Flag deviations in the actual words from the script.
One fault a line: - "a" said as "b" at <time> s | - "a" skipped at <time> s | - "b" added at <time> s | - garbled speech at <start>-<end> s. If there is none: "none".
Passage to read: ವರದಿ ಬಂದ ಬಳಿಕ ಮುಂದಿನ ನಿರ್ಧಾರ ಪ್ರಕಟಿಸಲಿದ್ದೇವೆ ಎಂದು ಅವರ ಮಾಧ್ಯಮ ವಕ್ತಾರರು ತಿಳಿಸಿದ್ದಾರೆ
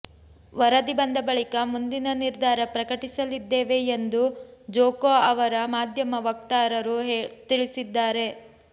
- "ಜೊಕೊ" added at 4.7 s